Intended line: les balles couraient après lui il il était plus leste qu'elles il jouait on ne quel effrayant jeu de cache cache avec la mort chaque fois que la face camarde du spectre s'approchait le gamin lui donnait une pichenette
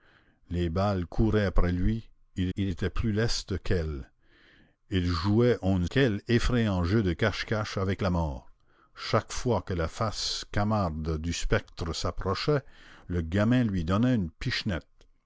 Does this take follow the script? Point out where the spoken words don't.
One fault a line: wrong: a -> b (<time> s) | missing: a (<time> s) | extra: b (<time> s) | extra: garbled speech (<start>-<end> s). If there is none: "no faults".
no faults